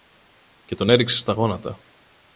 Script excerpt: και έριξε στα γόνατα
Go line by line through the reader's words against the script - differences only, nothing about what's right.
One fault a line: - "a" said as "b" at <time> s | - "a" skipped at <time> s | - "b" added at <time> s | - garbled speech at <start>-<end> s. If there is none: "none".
- "τον" added at 0.8 s